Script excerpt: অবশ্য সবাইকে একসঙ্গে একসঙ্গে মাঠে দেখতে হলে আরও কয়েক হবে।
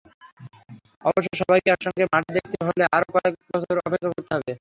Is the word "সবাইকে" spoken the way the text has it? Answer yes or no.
yes